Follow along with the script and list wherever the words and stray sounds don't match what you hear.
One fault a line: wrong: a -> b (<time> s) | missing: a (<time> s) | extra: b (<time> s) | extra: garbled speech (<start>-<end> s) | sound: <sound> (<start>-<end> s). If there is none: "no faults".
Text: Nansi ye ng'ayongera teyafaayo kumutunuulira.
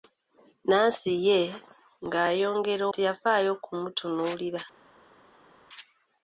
no faults